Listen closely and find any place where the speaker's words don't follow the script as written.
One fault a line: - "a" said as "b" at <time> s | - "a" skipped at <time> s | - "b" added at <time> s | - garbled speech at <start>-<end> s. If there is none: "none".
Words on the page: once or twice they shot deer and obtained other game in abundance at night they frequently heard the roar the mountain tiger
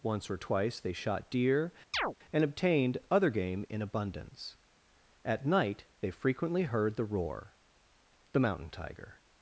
none